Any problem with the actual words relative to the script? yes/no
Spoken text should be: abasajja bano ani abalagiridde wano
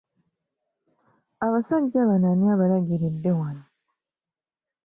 no